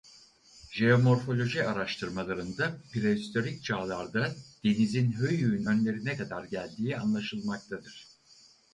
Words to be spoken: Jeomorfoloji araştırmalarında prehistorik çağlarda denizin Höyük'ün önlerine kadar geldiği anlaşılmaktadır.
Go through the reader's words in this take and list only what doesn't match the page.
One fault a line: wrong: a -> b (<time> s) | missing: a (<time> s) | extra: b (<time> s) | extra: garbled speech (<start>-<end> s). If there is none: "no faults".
no faults